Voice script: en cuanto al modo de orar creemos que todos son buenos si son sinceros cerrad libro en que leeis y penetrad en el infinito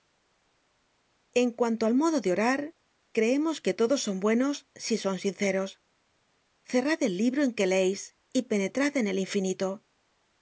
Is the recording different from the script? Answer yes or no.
yes